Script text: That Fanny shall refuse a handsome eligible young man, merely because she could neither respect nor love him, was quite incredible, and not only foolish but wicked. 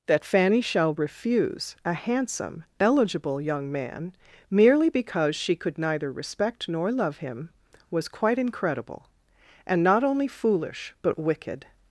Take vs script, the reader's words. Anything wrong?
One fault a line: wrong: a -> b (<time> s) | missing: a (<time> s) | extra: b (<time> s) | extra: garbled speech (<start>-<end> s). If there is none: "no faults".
no faults